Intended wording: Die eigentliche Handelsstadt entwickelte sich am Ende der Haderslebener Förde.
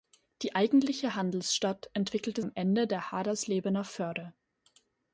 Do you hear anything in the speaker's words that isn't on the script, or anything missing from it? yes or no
yes